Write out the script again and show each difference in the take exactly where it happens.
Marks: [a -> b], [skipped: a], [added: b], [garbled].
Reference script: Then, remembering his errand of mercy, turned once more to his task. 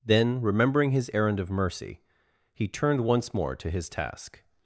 Then, remembering his errand of mercy, [added: he] turned once more to his task.